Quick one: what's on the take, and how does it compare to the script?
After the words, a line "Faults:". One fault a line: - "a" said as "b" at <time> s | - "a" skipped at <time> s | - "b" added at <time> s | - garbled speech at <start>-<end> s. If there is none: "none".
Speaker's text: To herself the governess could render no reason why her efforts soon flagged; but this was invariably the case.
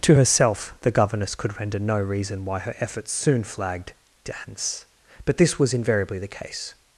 To herself the governess could render no reason why her efforts soon flagged; dance but this was invariably the case.
Faults:
- "dance" added at 4.2 s